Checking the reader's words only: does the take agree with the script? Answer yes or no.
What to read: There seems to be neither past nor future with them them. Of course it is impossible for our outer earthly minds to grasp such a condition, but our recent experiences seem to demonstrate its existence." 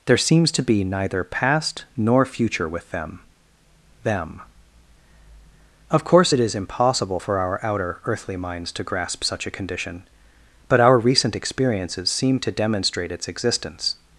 yes